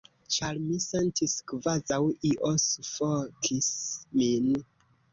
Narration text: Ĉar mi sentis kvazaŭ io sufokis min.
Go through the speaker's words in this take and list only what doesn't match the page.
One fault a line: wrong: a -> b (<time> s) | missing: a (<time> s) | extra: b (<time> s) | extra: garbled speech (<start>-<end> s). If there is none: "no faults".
no faults